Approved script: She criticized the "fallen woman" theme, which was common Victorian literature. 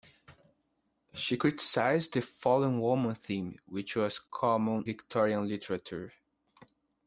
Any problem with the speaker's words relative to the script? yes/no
no